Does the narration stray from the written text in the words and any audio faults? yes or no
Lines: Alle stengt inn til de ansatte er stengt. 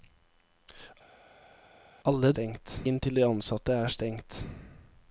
no